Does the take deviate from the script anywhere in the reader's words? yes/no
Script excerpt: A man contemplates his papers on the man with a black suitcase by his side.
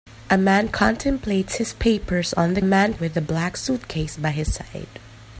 no